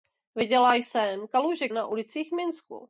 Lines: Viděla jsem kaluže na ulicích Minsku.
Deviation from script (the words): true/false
false